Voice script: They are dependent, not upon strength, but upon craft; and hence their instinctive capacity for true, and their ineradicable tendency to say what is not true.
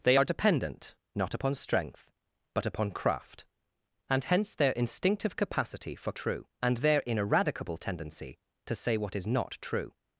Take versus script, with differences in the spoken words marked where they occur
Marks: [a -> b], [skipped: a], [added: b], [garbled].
They are dependent, not upon strength, but upon craft; and hence their instinctive capacity for true, and their ineradicable tendency to say what is not true.